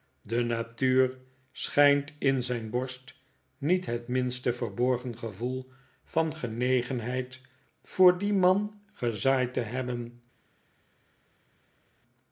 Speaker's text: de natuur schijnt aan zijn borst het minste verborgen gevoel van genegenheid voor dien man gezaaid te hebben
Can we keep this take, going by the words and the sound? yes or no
no